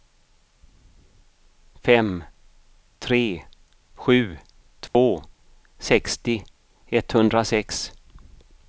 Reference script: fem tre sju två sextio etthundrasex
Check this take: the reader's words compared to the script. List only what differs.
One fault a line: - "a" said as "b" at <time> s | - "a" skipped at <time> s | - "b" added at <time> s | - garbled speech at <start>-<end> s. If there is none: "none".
none